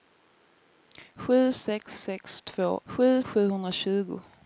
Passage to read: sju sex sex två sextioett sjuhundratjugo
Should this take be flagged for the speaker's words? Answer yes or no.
yes